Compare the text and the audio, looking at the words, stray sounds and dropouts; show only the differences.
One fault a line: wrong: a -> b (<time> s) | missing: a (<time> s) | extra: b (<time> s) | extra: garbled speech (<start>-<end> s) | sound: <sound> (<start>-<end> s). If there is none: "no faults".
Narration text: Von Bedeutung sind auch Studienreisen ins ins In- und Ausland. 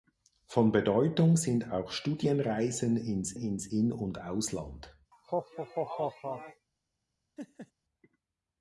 sound: laugh (5.1-6.7 s)
sound: laugh (7.4-7.7 s)